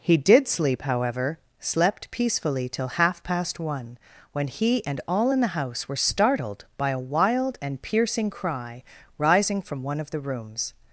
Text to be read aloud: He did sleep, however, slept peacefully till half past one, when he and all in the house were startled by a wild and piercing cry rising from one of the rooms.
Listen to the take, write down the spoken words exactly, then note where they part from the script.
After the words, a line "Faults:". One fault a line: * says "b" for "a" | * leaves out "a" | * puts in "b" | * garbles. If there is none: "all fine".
He did sleep, however, slept peacefully till half past one, when he and all in the house were startled by a wild and piercing cry rising from one of the rooms.
Faults:
all fine